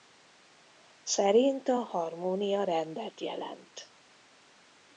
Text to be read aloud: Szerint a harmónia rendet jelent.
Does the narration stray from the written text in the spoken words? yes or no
no